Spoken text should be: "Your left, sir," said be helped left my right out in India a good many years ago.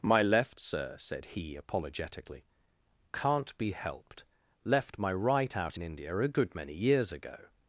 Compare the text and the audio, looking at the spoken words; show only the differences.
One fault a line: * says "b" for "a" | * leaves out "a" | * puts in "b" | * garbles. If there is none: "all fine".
* says "My" for "Your"
* puts in "he apologetically can't"